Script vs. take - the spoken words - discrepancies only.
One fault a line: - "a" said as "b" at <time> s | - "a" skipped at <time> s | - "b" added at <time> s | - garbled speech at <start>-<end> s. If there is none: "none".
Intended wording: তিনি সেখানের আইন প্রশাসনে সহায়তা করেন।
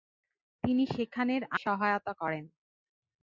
- "আইন প্রশাসনে" skipped at 1.4 s